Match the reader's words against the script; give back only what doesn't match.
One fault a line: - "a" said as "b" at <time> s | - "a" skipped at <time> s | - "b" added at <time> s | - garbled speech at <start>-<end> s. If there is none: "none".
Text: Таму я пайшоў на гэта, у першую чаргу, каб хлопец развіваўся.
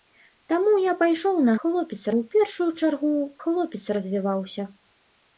- "гэта" said as "хлопец" at 1.6 s
- "каб" skipped at 3.1 s